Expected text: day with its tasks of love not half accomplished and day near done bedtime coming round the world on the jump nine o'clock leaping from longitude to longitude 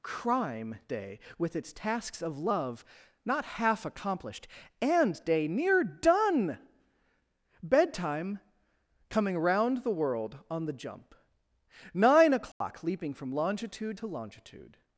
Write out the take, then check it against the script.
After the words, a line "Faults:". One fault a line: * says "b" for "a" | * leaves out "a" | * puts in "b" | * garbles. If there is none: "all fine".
crime day with its tasks of love not half accomplished and day near done bedtime coming round the world on the jump nine o'clock leaping from longitude to longitude
Faults:
* puts in "crime"